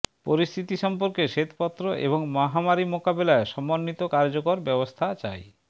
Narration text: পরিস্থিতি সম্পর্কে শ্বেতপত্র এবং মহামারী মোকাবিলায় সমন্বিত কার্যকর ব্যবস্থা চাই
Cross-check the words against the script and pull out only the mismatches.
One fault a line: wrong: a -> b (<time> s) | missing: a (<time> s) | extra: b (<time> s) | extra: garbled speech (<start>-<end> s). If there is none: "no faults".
no faults